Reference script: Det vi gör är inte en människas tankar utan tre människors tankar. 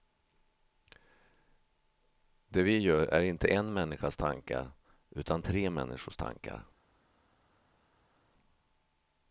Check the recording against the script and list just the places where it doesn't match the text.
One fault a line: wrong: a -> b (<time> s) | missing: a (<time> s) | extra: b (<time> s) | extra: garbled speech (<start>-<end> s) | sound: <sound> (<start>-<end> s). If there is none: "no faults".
no faults